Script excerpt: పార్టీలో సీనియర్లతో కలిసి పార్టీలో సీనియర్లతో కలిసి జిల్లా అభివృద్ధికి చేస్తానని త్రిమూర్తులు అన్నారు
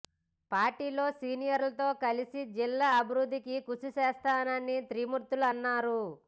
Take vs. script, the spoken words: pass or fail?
fail